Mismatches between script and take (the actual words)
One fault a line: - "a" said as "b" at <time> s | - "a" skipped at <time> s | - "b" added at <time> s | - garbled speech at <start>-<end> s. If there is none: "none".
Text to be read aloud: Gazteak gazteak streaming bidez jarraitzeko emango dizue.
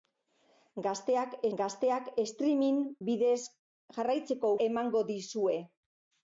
none